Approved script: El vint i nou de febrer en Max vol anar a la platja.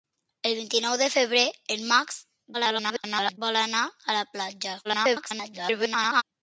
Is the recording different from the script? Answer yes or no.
yes